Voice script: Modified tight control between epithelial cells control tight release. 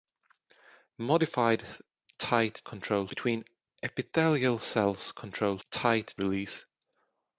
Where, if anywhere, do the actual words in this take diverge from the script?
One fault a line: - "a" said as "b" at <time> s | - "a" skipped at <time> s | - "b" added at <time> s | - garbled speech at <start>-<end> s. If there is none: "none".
none